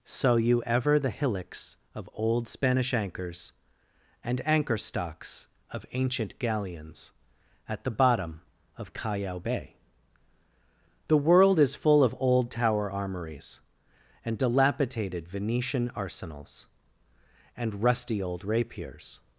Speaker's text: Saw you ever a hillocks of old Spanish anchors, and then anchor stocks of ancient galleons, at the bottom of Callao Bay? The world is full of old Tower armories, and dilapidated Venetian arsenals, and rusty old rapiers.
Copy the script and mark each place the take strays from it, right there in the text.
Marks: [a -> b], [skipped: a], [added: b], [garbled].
Saw you ever [a -> the] hillocks of old Spanish anchors, and [skipped: then] anchor stocks of ancient galleons, at the bottom of Callao Bay? The world is full of old Tower armories, and dilapidated Venetian arsenals, and rusty old rapiers.